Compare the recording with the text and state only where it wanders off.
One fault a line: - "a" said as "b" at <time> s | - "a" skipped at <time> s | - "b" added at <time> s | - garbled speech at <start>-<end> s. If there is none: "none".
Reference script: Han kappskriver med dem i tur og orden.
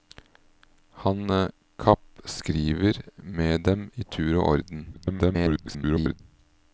- garbled speech at 4.9-6.2 s